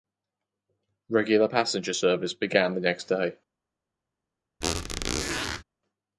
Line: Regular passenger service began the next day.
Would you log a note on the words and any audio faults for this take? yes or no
yes